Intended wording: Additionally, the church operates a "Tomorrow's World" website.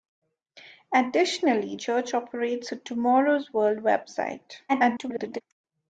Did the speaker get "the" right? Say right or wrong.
wrong